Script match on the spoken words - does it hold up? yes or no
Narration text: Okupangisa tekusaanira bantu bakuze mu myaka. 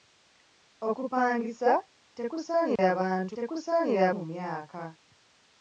no